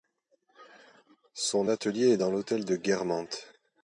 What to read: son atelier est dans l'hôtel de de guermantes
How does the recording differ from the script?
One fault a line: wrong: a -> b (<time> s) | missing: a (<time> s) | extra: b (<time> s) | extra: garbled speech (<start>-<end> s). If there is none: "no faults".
missing: de (2.8 s)